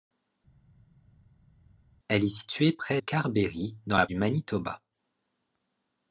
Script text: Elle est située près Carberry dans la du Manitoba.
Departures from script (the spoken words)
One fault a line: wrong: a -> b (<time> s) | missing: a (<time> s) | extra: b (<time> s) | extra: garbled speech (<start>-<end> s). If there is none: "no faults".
no faults